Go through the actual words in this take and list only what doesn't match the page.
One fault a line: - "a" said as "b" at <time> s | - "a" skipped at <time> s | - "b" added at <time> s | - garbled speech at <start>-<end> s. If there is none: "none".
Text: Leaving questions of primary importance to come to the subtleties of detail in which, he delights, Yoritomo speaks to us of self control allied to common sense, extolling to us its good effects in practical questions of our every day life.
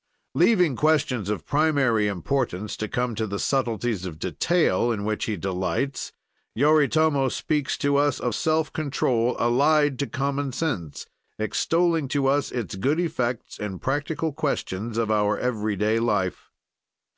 none